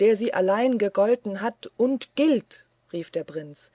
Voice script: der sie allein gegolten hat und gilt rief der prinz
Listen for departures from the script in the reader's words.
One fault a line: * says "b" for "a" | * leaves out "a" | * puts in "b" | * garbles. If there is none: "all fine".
all fine